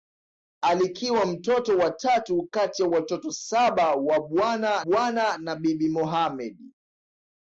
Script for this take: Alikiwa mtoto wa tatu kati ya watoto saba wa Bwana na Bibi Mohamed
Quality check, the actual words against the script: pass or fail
fail